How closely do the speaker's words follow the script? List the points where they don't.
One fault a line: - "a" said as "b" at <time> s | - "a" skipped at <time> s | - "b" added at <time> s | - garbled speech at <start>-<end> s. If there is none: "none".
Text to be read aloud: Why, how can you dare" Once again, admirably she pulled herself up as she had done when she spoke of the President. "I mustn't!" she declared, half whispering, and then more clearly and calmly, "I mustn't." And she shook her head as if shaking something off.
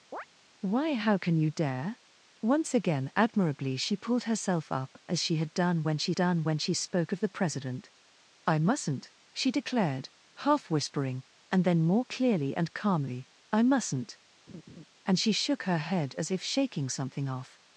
- "done when she" added at 6.2 s